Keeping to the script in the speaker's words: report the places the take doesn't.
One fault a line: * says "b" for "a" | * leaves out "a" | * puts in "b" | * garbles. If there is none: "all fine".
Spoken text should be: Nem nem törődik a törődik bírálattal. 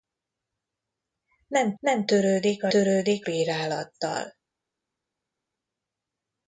all fine